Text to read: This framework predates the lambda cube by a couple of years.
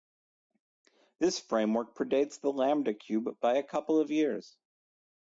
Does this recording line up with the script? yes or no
yes